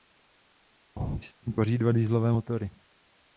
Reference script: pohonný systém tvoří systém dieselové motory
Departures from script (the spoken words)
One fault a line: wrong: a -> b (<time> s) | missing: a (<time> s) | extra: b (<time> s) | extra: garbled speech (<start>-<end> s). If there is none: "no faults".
wrong: systém -> dva (1.8 s)